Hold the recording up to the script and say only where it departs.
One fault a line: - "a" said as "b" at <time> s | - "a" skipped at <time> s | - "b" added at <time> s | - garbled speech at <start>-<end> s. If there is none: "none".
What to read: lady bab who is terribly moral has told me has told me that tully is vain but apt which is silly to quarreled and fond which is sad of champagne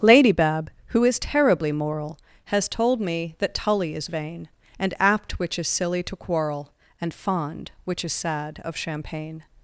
- "has told me" skipped at 3.4 s
- "but" said as "and" at 4.8 s
- "quarreled" said as "quarrel" at 6.2 s